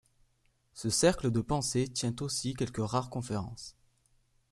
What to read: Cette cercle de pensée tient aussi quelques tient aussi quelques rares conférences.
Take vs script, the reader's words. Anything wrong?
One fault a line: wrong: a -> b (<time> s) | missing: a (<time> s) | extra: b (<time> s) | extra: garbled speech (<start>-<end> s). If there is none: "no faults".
wrong: Cette -> Ce (0.7 s)
missing: tient aussi quelques (2.8 s)